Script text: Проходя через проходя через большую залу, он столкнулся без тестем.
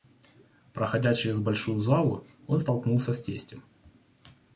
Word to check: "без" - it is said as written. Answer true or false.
false